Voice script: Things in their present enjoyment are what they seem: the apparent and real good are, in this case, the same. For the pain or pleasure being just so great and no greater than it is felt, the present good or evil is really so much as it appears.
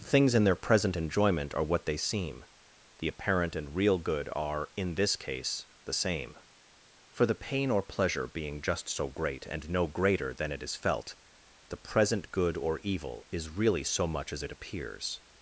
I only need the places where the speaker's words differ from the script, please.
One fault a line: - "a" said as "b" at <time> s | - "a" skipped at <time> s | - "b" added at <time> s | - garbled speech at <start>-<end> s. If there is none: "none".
none